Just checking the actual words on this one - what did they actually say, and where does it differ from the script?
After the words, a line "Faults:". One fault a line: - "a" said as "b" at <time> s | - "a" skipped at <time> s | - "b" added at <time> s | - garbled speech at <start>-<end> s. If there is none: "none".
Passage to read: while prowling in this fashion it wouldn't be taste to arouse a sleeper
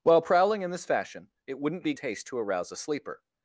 while prowling in this fashion it wouldn't be taste to arouse a sleeper
Faults:
none